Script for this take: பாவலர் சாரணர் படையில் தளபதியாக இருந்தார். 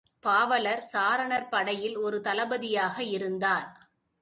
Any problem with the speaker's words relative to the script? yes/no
yes